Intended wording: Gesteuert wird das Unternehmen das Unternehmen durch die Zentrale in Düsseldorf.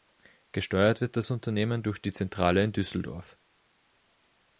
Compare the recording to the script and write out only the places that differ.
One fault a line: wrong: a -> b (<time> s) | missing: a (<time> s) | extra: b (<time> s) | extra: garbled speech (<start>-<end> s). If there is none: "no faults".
missing: das Unternehmen (1.8 s)